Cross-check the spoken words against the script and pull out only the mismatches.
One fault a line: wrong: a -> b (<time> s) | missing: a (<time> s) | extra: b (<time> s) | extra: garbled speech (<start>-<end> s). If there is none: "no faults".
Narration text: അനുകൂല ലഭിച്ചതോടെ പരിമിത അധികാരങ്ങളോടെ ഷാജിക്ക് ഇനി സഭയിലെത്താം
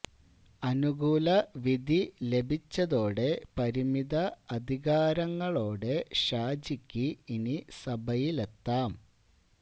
extra: വിധി (1.6 s)